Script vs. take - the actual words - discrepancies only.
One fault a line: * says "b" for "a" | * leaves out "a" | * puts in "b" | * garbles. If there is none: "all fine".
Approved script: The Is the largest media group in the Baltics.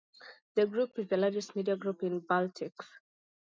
* puts in "Group"